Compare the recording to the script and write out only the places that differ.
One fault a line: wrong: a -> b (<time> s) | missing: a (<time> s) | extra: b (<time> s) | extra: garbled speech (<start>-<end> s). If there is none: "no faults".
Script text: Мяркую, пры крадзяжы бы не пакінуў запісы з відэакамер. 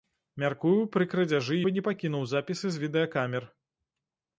no faults